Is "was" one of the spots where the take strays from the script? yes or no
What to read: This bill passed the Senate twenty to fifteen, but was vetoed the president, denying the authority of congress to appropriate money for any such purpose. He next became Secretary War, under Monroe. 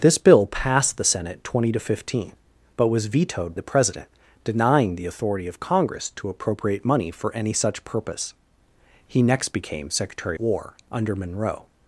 no